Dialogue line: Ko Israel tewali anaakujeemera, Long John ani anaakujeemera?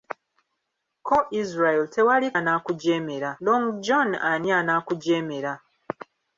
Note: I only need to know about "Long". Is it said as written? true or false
true